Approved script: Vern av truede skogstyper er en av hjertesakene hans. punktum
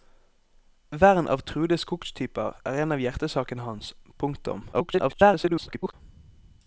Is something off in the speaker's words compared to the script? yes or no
yes